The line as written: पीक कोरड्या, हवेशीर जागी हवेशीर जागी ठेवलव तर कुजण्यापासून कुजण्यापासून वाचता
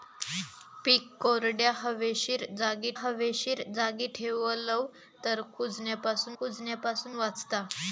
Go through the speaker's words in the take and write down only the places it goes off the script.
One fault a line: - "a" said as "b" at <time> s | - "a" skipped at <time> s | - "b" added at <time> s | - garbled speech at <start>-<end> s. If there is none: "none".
none